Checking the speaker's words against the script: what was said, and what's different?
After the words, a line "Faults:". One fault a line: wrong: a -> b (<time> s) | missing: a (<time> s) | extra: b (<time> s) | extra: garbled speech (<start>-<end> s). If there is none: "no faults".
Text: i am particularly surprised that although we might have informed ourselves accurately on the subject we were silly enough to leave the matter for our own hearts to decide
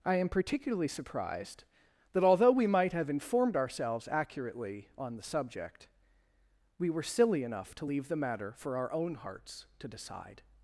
i am particularly surprised that although we might have informed ourselves accurately on the subject we were silly enough to leave the matter for our own hearts to decide
Faults:
no faults